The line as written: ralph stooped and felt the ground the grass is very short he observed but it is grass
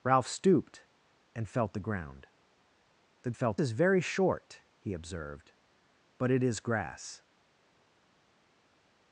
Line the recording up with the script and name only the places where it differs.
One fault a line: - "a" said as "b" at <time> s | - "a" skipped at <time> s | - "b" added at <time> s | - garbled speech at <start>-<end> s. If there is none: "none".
- "grass" said as "felt" at 3.3 s